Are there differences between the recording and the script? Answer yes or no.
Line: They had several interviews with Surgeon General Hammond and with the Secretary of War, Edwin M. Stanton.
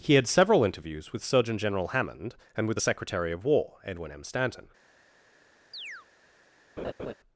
yes